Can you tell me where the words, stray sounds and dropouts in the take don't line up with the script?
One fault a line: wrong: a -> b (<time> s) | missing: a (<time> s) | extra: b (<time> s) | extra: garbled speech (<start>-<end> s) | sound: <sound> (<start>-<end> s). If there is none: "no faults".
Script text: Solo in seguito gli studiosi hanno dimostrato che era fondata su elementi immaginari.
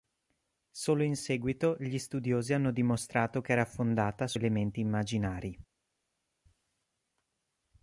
no faults